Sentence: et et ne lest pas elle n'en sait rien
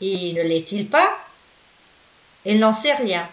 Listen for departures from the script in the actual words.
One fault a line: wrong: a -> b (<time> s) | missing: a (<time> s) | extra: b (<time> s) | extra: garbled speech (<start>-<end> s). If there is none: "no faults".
missing: et (0.3 s)
extra: il (0.7 s)